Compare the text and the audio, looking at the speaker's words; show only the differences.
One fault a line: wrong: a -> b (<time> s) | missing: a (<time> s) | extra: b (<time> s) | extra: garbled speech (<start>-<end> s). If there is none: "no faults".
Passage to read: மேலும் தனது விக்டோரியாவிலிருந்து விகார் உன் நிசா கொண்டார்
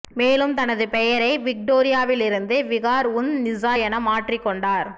extra: பெயரை (0.9 s)
extra: என மாற்றிக் (3.8 s)